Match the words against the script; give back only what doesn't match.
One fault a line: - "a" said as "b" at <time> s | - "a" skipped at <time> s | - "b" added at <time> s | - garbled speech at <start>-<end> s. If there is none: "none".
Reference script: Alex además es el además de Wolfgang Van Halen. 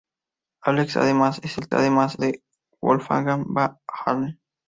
none